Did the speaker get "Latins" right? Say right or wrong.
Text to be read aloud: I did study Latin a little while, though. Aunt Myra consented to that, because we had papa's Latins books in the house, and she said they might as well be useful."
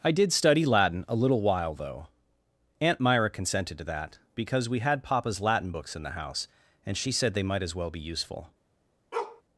wrong